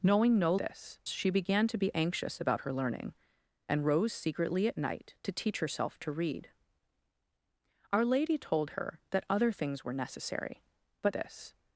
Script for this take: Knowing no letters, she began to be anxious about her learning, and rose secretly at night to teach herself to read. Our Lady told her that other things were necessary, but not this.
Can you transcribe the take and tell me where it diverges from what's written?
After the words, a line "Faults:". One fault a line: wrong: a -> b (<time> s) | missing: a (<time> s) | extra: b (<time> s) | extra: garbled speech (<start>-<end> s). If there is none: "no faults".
Knowing no this, she began to be anxious about her learning, and rose secretly at night to teach herself to read. Our Lady told her that other things were necessary, but this.
Faults:
wrong: letters -> this (0.6 s)
missing: not (11.1 s)